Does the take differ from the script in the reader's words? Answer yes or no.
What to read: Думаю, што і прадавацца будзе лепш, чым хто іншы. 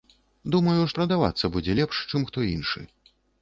yes